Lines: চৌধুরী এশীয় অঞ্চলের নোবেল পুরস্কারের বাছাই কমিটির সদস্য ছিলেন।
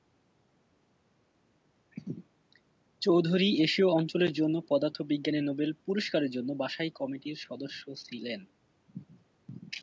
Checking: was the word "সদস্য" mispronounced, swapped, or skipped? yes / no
no